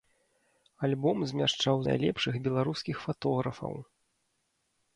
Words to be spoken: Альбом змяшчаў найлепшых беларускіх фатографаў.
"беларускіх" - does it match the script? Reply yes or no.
yes